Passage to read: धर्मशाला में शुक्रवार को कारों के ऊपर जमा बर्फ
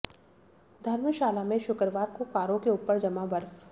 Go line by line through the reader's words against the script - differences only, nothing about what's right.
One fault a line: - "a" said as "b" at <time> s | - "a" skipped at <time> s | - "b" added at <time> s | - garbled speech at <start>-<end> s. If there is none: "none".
none